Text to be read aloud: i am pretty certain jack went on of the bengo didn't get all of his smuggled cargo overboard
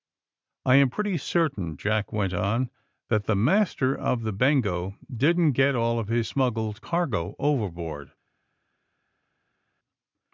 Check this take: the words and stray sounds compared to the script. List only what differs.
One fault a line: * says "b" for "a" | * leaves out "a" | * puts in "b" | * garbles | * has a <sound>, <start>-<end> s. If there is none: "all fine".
* puts in "that the master"